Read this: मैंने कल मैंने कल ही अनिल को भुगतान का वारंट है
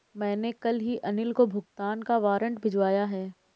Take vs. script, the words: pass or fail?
fail